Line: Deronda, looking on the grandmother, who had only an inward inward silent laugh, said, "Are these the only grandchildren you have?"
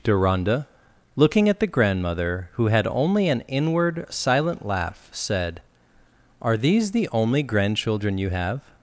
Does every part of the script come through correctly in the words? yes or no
no